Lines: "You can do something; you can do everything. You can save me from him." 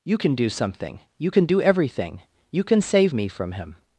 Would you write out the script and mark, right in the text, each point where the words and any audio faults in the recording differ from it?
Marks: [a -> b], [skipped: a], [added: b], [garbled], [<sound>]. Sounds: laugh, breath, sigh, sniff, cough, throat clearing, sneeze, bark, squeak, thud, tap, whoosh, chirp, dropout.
"You can do something; you can do everything. You can save me from him."